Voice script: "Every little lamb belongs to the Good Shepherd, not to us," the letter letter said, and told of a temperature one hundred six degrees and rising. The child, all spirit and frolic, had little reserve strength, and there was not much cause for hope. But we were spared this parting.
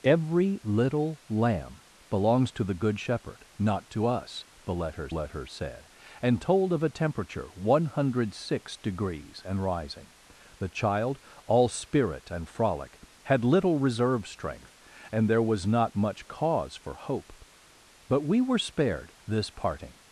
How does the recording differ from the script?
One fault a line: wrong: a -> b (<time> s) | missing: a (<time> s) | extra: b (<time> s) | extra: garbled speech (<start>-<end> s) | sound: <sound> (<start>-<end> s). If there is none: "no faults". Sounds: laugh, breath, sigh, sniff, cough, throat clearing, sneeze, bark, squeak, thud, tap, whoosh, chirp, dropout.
no faults